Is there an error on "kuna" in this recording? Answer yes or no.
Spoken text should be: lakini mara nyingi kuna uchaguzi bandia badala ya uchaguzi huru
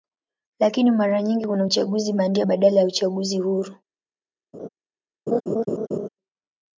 no